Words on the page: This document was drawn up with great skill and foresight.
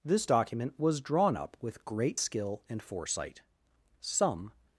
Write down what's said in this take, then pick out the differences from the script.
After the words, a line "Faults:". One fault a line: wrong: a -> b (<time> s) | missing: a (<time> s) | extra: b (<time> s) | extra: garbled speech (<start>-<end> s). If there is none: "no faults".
This document was drawn up with great skill and foresight. Some
Faults:
extra: Some (4.0 s)